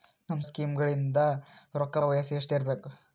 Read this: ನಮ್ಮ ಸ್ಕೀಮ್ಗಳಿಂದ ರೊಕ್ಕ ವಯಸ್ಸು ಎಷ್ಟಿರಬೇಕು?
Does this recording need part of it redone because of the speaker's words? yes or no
no